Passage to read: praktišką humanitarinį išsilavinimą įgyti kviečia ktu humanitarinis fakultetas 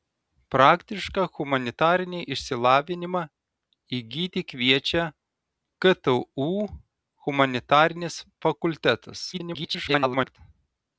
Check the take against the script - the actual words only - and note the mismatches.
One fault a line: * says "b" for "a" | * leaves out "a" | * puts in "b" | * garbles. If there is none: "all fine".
* garbles